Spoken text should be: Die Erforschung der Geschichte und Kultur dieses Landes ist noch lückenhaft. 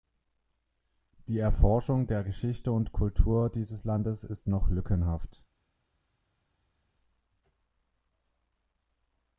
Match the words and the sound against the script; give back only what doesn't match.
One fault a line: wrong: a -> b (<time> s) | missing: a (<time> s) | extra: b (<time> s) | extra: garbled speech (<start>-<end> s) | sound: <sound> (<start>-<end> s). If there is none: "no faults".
no faults